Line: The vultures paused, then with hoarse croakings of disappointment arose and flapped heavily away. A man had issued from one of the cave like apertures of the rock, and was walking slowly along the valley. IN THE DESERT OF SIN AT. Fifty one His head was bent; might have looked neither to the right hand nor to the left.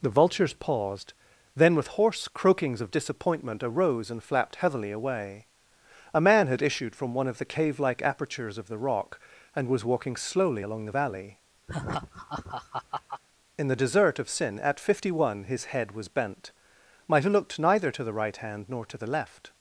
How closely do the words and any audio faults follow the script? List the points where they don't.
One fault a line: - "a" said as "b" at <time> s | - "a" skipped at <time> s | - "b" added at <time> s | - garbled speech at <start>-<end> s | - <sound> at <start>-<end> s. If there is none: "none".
- laugh at 11.7-13.2 s